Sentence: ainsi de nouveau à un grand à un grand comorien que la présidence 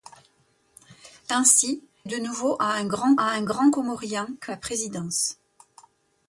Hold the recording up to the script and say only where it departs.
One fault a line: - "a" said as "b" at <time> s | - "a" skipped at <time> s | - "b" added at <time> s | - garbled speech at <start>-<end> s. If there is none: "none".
none